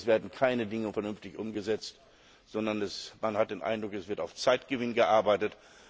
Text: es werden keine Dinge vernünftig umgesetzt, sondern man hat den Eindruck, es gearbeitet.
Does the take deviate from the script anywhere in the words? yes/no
yes